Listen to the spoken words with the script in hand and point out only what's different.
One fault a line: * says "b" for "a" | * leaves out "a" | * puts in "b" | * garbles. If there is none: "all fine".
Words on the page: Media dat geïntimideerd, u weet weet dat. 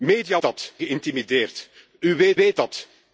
all fine